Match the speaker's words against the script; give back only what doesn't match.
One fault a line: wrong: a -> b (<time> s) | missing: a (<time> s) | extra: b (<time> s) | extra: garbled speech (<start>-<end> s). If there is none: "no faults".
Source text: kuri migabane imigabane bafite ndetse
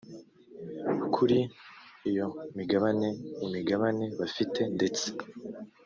extra: iyo (2.1 s)